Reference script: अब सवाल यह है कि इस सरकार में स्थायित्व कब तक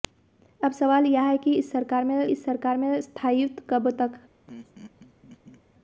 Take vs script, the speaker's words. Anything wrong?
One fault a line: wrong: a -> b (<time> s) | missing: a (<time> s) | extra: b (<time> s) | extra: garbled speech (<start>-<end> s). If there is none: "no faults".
extra: इस सरकार में (2.3 s)